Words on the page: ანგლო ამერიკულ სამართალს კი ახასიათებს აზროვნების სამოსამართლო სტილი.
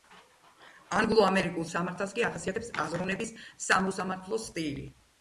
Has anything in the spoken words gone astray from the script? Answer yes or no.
no